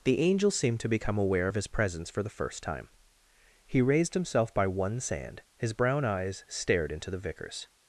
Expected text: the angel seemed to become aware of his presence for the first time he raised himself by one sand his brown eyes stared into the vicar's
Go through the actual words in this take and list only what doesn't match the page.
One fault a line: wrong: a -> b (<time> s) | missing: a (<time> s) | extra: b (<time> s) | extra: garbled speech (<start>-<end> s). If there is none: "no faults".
no faults